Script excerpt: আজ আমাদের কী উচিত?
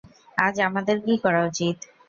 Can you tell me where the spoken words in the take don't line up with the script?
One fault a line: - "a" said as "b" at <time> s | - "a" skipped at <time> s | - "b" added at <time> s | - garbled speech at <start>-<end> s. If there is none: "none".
- "করা" added at 1.2 s